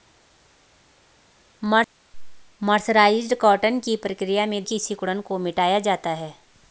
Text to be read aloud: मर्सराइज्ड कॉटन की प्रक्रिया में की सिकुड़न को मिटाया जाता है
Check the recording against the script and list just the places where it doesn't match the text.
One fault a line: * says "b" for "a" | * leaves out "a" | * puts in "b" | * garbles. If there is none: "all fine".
all fine